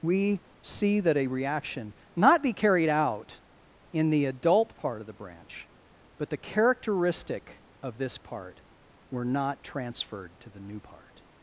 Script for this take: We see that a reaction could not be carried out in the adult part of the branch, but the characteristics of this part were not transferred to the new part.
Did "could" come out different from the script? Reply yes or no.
yes